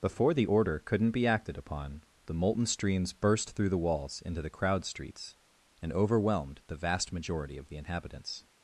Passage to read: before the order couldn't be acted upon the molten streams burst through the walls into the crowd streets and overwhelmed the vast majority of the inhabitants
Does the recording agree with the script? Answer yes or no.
yes